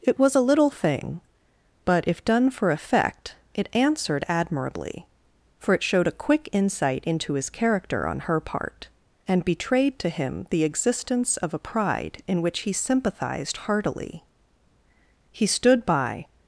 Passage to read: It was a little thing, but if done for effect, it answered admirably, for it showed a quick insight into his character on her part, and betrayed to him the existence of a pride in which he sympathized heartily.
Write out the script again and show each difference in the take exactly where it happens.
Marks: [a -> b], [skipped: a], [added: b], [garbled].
It was a little thing, but if done for effect, it answered admirably, for it showed a quick insight into his character on her part, and betrayed to him the existence of a pride in which he sympathized heartily. [added: He stood by]